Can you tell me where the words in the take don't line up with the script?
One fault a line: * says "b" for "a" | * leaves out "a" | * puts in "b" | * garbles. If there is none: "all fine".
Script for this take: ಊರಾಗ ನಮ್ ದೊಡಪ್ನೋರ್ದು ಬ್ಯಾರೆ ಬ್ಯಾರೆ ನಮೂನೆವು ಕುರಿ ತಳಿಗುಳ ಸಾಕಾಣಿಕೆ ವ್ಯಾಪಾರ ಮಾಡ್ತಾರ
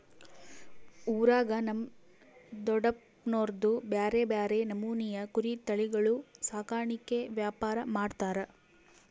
all fine